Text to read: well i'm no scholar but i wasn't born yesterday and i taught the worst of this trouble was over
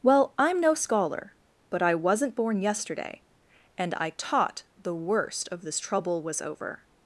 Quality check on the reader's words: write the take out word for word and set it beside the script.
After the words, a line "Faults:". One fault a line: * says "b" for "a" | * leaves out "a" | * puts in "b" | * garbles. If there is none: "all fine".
well i'm no scholar but i wasn't born yesterday and i taught the worst of this trouble was over
Faults:
all fine